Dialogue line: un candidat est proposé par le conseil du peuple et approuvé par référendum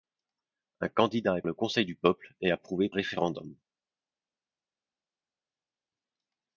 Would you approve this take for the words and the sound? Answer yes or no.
no